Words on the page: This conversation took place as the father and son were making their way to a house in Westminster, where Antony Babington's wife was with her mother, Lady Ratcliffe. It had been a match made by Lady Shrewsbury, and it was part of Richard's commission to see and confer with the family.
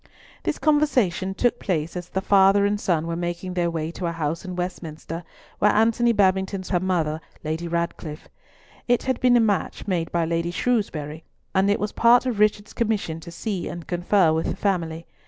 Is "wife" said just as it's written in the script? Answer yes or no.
no